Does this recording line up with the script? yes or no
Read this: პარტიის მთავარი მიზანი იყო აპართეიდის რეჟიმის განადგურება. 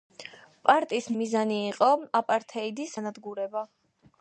no